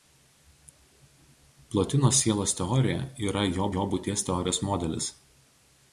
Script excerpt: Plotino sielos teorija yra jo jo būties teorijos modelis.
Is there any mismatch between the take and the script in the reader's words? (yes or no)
no